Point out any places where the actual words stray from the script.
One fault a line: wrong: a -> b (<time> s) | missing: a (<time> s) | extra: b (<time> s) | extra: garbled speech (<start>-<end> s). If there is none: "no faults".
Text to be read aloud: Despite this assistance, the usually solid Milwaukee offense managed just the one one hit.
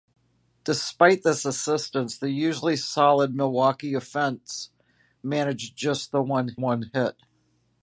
no faults